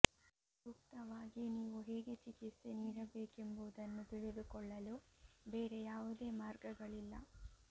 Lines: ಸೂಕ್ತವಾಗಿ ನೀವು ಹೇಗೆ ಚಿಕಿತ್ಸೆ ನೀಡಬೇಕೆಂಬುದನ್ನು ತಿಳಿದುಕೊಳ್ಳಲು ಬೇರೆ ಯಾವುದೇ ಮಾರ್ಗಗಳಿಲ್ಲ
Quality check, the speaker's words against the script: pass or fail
pass